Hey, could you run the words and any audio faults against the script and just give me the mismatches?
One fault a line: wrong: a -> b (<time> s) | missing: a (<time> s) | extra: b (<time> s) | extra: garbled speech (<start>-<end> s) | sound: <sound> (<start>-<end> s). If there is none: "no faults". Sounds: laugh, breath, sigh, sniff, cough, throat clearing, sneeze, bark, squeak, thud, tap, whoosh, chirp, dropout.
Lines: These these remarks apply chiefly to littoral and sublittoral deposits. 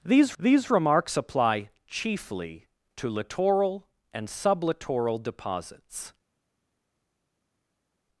no faults